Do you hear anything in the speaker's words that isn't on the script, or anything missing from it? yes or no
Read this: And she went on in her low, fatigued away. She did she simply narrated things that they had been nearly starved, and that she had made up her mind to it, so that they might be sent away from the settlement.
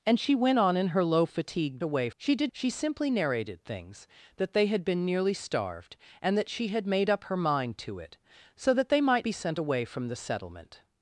no